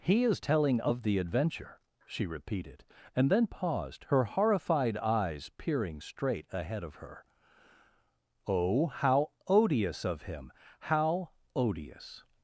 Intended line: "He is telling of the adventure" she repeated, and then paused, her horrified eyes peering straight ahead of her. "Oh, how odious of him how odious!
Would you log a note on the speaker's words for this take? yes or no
no